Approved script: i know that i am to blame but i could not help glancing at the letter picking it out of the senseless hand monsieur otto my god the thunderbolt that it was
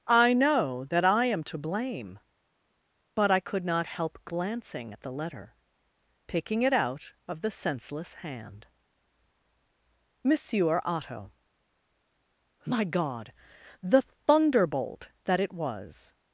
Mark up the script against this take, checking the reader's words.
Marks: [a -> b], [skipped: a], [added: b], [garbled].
i know that i am to blame but i could not help glancing at the letter picking it out of the senseless hand monsieur otto my god the thunderbolt that it was